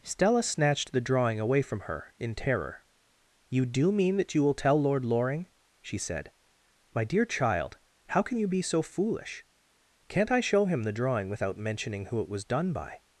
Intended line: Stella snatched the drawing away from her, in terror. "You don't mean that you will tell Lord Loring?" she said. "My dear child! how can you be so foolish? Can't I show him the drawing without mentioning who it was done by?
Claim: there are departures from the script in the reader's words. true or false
true